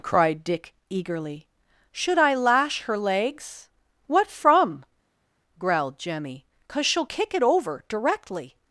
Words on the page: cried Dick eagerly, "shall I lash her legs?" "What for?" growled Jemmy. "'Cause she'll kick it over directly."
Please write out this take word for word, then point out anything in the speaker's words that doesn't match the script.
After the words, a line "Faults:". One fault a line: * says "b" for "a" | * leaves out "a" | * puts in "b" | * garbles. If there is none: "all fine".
cried Dick eagerly, "should I lash her legs?" "What from?" growled Jemmy. "'Cause she'll kick it over directly."
Faults:
* says "should" for "shall"
* says "from" for "for"